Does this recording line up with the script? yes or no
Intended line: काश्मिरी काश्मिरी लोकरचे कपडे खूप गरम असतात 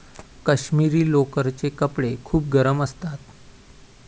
no